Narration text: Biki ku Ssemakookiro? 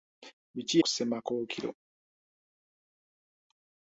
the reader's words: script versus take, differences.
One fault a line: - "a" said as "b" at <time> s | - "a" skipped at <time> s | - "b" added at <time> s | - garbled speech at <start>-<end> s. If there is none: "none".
none